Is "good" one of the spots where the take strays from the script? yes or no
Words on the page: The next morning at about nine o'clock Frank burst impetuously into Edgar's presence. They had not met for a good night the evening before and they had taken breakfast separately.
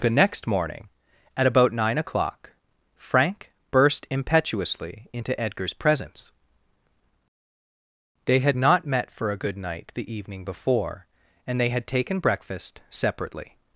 no